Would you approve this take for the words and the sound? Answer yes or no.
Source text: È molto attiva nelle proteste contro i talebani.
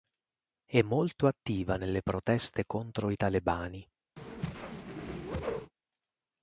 no